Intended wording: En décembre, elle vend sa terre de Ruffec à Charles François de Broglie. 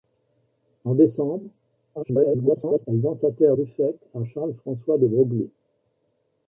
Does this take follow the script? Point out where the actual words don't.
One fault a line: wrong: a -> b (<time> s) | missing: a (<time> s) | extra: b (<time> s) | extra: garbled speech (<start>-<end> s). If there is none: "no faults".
extra: garbled speech (1.9-2.9 s)
missing: de (3.6 s)